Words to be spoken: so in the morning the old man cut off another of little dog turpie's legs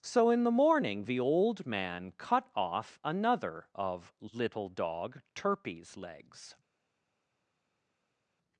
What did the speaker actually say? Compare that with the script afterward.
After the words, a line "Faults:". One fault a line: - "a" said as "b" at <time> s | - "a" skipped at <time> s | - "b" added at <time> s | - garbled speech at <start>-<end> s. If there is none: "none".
so in the morning the old man cut off another of little dog turpie's legs
Faults:
none